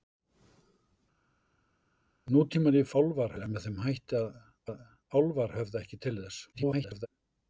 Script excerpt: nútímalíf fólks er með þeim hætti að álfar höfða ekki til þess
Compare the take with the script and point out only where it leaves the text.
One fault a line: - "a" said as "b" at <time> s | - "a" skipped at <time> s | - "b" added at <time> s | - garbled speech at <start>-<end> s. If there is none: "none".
- "fólks" said as "álfar" at 3.0 s
- "að" added at 4.7 s
- garbled speech at 6.5-7.1 s